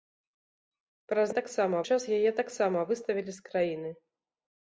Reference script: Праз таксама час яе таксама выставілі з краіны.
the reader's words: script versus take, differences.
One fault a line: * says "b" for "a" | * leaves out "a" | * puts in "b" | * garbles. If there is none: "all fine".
all fine